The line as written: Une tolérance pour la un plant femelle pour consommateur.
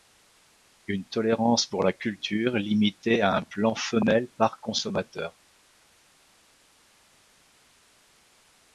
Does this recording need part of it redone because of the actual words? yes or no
yes